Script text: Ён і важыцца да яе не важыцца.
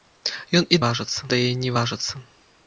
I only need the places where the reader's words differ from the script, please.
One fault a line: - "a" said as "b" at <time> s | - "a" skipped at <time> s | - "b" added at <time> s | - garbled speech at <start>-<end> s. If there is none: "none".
none